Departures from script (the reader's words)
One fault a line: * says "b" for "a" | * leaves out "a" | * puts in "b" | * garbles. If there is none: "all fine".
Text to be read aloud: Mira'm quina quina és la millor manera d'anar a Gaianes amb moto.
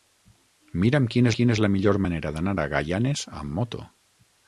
all fine